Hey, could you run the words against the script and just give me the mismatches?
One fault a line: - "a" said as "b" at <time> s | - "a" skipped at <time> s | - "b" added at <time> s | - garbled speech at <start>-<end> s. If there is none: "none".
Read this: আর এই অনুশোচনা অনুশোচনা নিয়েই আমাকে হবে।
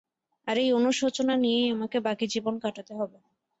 - "অনুশোচনা" skipped at 1.4 s
- "বাকি জীবন কাটাতে" added at 2.1 s